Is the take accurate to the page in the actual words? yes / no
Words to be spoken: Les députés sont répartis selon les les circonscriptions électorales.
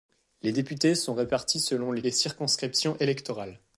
yes